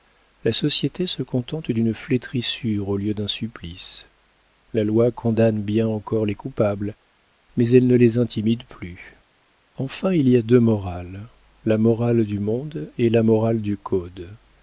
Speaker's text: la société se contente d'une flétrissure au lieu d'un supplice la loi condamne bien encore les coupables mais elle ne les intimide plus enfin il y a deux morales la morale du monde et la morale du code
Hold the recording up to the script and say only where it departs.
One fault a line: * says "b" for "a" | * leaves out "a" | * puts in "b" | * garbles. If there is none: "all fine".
all fine